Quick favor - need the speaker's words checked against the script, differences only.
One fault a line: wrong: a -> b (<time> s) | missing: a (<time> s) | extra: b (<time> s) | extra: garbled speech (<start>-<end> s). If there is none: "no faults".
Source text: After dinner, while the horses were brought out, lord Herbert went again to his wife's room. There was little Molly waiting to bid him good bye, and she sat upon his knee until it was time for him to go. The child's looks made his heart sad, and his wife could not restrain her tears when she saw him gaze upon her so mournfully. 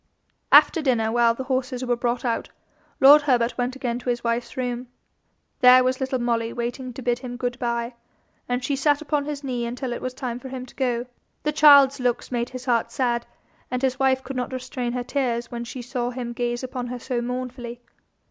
no faults